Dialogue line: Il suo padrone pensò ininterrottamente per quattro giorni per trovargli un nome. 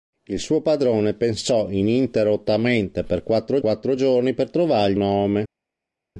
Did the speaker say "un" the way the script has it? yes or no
no